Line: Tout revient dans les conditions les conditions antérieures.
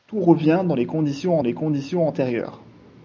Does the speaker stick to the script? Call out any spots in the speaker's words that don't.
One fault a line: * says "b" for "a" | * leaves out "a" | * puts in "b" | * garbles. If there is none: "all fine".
all fine